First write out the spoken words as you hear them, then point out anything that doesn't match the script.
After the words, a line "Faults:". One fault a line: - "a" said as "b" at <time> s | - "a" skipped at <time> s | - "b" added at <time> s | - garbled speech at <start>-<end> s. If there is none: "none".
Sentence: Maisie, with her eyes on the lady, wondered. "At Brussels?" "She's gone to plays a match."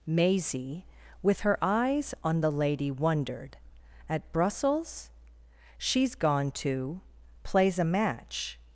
Maisie, with her eyes on the lady, wondered. "At Brussels?" "She's gone to plays a match."
Faults:
none